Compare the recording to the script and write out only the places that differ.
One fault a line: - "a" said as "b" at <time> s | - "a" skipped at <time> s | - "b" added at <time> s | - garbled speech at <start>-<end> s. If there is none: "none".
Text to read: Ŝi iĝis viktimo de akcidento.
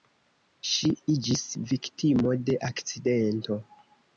none